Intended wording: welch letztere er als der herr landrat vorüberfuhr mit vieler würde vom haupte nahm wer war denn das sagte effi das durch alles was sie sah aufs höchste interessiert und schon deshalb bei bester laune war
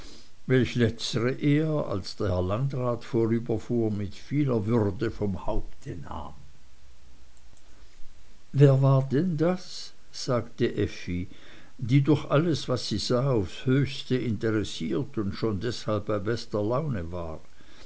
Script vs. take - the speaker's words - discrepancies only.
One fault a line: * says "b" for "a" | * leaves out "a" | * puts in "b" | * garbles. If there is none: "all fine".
* says "die" for "das"